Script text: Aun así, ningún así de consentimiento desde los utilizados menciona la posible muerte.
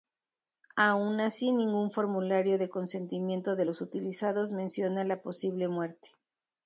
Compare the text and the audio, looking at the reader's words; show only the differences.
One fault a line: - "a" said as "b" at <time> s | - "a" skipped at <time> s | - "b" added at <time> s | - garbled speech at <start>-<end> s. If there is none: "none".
- "así" said as "formulario" at 1.9 s
- "desde" said as "de" at 3.5 s